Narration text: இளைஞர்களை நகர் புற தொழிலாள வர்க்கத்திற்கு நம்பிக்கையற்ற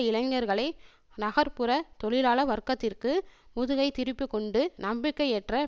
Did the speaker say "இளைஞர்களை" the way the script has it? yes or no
yes